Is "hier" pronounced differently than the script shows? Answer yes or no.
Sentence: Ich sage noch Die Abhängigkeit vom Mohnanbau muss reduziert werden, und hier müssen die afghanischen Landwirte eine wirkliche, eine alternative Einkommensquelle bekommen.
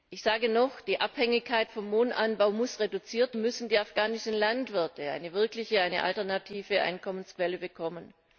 yes